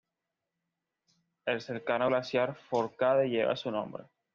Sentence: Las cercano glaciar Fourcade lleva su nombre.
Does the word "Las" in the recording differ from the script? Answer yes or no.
yes